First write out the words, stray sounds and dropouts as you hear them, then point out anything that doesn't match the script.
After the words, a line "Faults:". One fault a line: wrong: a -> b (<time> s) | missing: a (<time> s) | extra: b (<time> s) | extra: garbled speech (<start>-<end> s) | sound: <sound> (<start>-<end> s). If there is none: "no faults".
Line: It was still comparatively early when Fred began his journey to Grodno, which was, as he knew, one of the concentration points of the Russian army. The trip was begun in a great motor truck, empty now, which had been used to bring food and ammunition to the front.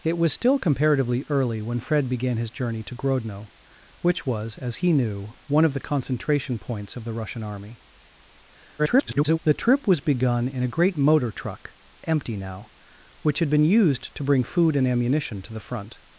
It was still comparatively early when Fred began his journey to Grodno, which was, as he knew, one of the concentration points of the Russian army. [garbled] The trip was begun in a great motor truck, empty now, which had been used to bring food and ammunition to the front.
Faults:
extra: garbled speech (8.8-9.4 s)